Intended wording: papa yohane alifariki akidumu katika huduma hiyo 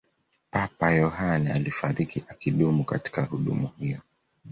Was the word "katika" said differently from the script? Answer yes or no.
no